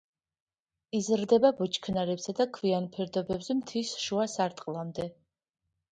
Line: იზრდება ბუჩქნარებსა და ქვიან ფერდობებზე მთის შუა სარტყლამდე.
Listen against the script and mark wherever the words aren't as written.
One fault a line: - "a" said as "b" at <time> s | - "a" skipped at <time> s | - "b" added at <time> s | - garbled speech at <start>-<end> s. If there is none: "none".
none